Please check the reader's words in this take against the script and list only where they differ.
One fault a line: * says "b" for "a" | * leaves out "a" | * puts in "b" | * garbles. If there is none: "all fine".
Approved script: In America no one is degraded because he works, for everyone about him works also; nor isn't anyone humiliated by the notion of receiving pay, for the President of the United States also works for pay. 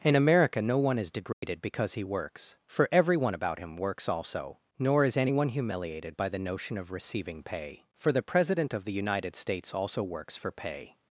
* says "is" for "isn't"